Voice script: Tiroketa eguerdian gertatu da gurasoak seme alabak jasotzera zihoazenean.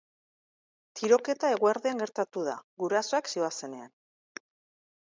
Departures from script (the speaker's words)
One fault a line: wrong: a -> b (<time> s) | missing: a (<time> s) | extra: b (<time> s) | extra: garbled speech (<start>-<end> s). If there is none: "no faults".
missing: seme alabak jasotzera (3.3 s)